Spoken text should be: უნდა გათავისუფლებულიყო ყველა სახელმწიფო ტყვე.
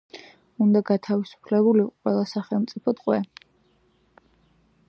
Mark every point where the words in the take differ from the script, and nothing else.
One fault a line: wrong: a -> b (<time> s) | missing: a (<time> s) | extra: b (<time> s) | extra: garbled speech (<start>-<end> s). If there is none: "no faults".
no faults